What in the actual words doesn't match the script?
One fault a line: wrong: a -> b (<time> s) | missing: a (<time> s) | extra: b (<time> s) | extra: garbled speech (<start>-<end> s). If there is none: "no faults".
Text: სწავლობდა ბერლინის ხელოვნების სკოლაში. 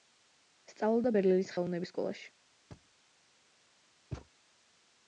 no faults